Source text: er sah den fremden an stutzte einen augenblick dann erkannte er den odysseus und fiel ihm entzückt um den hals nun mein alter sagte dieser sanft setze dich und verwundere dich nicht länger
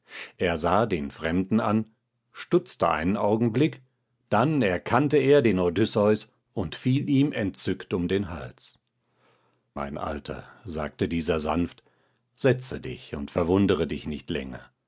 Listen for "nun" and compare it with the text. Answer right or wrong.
wrong